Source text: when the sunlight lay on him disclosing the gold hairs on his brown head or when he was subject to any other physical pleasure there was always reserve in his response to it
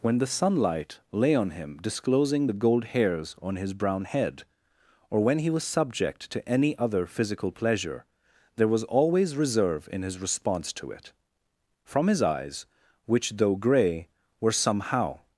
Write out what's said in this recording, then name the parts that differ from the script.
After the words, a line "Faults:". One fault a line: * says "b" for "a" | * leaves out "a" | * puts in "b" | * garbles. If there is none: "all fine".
when the sunlight lay on him disclosing the gold hairs on his brown head or when he was subject to any other physical pleasure there was always reserve in his response to it from his eyes which though gray were somehow
Faults:
* puts in "from his eyes which though gray were somehow"